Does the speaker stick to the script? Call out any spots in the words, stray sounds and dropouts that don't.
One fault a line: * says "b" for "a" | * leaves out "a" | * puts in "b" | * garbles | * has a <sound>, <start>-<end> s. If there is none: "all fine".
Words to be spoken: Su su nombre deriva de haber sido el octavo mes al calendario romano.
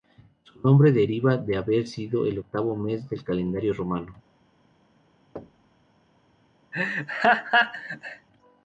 * leaves out "su"
* says "del" for "al"
* has a thud, 5.4-5.9 s
* has a laugh, 6.7-8.3 s